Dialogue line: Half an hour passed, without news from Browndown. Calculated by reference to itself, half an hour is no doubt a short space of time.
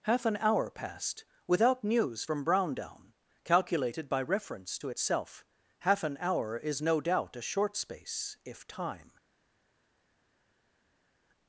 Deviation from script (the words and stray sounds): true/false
true